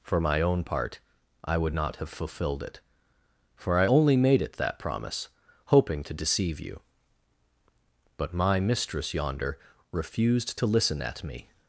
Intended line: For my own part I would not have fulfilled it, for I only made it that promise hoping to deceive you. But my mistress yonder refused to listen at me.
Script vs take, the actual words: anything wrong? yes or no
no